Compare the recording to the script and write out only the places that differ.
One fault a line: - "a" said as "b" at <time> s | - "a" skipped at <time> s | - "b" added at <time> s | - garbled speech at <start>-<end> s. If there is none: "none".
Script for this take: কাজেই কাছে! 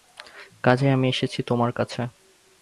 - "আমি এসেছি তোমার" added at 0.9 s